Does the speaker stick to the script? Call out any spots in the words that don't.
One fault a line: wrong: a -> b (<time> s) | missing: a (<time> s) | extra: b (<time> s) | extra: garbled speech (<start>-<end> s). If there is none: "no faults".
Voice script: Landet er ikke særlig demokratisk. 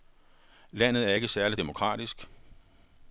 no faults